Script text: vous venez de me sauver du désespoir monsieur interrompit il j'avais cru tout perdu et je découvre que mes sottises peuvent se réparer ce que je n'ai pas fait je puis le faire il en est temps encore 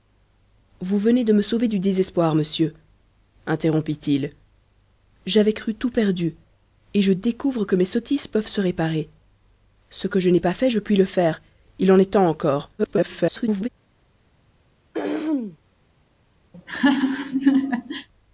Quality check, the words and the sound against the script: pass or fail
fail